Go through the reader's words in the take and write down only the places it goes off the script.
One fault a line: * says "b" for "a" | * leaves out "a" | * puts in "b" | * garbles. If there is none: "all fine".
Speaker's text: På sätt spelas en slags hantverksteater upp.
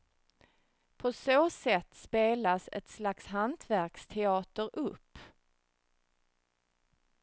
* puts in "så"
* says "ett" for "en"